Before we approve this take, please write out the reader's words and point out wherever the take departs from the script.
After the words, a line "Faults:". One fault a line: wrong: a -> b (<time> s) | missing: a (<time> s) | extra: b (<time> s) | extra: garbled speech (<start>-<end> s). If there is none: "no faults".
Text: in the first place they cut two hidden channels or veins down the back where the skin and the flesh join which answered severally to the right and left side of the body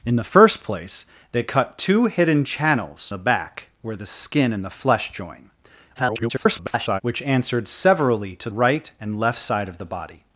in the first place they cut two hidden channels the back where the skin and the flesh join [garbled] which answered severally to right and left side of the body
Faults:
missing: or veins down (3.1 s)
extra: garbled speech (5.9-7.0 s)
missing: the (8.5 s)